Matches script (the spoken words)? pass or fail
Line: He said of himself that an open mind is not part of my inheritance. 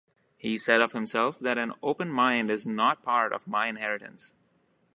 pass